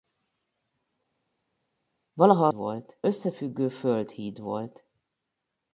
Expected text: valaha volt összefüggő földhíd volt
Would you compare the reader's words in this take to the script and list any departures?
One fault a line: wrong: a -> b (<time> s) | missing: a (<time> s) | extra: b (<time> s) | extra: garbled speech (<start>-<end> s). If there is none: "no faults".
no faults